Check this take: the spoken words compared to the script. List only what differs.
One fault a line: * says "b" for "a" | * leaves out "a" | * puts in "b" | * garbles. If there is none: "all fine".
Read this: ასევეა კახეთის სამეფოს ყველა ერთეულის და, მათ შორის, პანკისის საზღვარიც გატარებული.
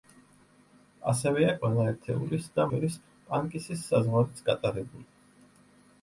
* leaves out "კახეთის სამეფოს"
* leaves out "მათ"